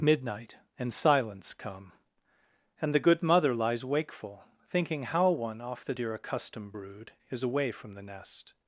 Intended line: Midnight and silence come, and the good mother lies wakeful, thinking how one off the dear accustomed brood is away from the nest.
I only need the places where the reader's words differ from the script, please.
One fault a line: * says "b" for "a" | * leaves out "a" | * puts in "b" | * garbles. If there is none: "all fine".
all fine